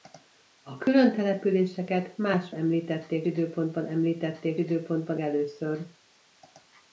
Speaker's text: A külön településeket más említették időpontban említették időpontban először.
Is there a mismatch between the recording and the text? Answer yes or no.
no